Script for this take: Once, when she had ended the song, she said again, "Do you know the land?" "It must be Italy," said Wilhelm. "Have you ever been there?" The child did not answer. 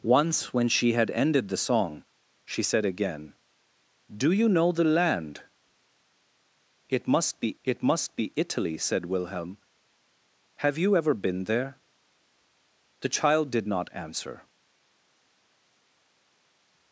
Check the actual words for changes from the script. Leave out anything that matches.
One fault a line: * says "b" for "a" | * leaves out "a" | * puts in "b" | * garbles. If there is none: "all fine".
* puts in "it must be"